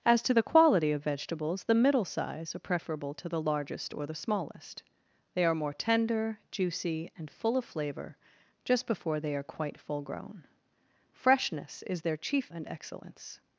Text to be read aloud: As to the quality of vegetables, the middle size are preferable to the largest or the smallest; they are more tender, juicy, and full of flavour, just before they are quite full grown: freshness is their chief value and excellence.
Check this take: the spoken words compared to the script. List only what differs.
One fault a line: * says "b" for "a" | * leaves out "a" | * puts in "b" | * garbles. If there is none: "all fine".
* leaves out "value"